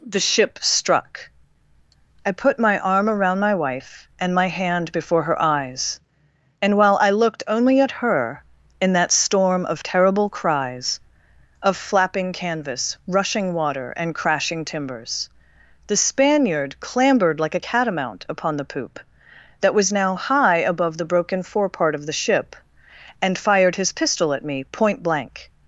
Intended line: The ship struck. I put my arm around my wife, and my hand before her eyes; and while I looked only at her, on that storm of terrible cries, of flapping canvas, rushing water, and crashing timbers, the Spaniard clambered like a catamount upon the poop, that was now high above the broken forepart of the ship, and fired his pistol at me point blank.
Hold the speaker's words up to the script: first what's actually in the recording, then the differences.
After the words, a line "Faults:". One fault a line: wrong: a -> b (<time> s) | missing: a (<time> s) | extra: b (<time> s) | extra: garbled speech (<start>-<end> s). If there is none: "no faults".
The ship struck. I put my arm around my wife, and my hand before her eyes; and while I looked only at her, in that storm of terrible cries, of flapping canvas, rushing water, and crashing timbers, the Spaniard clambered like a catamount upon the poop, that was now high above the broken forepart of the ship, and fired his pistol at me point blank.
Faults:
wrong: on -> in (8.8 s)